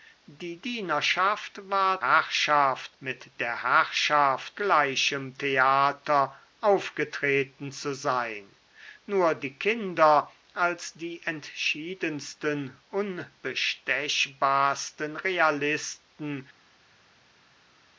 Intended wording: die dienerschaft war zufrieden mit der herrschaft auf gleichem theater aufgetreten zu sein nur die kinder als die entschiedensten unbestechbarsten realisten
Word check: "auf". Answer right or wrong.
wrong